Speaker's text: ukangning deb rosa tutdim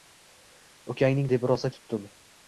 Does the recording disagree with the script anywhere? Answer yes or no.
no